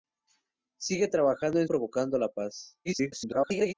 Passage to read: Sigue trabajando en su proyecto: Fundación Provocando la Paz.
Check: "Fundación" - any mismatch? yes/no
yes